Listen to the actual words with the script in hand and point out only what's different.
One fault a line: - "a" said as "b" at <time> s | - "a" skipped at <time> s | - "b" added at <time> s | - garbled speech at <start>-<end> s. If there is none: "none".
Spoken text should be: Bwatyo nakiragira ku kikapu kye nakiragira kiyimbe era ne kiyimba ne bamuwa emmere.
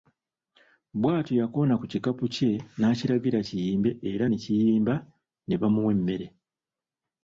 - "nakiragira" said as "yakoona" at 1.4 s